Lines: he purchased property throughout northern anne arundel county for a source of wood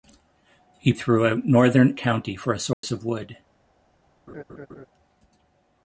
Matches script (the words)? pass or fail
fail